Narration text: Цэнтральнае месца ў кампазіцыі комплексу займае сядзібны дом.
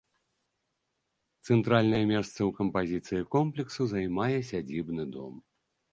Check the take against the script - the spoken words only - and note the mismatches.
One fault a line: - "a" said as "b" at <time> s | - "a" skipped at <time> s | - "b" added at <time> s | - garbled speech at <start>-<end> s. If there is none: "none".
none